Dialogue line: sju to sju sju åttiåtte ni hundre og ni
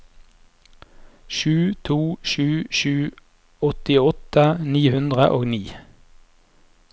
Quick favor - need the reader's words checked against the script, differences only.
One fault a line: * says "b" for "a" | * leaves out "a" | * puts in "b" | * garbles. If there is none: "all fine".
all fine